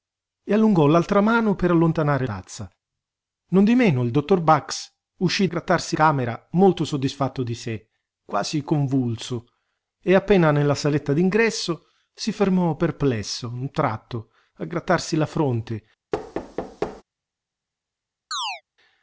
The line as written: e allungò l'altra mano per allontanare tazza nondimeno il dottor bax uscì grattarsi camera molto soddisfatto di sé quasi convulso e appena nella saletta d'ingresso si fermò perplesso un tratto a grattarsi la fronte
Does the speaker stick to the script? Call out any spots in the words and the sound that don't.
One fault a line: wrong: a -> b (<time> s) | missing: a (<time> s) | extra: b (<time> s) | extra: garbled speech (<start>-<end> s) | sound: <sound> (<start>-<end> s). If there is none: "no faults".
sound: thud (16.1-17.0 s)
sound: chirp (18.3-18.6 s)